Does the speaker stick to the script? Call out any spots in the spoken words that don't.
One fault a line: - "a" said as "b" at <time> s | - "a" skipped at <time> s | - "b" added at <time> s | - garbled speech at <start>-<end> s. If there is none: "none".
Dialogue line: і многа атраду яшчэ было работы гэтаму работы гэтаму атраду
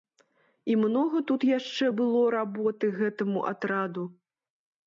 - "атраду" said as "тут" at 1.3 s
- "работы гэтаму" skipped at 3.5 s